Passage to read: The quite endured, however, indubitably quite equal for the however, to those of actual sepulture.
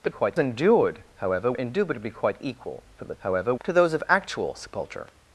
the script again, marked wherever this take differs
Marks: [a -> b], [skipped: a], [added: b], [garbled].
The quite endured, however, indubitably quite equal for the however, to those of actual sepulture.